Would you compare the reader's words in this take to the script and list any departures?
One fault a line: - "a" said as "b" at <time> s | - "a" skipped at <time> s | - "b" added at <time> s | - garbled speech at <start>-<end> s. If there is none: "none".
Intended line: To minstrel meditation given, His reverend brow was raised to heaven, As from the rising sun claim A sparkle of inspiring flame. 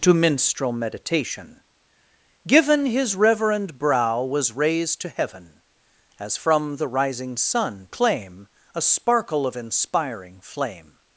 none